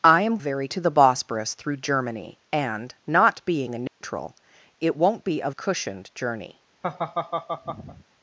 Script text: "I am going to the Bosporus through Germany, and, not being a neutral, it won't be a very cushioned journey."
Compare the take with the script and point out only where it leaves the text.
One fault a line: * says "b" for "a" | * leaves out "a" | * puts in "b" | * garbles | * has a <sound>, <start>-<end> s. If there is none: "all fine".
* says "very" for "going"
* has a dropout, 3.9-4.0 s
* leaves out "very"
* has a laugh, 6.8-8.0 s